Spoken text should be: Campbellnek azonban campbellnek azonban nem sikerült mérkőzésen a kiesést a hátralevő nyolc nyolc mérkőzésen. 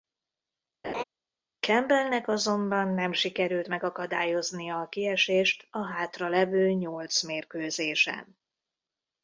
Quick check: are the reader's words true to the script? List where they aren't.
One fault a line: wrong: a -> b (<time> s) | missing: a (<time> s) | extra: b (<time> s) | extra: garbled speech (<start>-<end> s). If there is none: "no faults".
missing: campbellnek azonban (2.9 s)
wrong: mérkőzésen -> megakadályoznia (3.7 s)
missing: nyolc (7.2 s)